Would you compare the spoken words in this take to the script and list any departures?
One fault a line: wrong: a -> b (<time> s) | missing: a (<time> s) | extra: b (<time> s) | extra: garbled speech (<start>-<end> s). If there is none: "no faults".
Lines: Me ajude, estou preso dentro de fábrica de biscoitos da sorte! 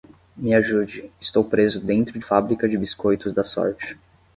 no faults